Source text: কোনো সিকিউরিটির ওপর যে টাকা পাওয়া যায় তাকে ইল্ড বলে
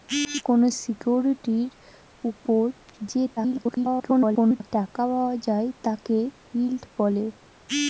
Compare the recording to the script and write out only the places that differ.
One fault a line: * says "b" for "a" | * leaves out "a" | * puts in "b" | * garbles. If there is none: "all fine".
* garbles